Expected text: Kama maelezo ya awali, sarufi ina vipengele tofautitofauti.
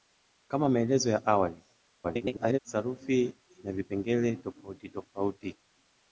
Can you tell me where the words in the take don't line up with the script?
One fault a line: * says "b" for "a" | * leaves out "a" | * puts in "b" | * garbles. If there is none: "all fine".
* garbles